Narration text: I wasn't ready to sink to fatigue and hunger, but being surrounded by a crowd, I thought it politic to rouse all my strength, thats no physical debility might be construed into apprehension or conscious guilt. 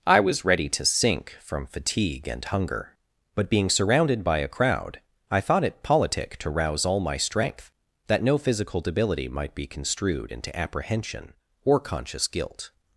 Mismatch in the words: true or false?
true